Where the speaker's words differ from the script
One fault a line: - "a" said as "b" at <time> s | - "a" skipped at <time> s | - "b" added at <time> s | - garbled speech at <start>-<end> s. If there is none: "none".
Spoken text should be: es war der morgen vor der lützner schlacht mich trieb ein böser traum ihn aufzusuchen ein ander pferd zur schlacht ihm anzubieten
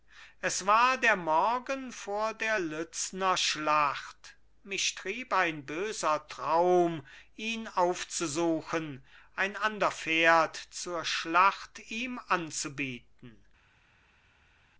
none